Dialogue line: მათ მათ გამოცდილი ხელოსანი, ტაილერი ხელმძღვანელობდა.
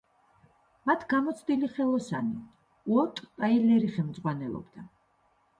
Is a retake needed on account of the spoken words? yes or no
yes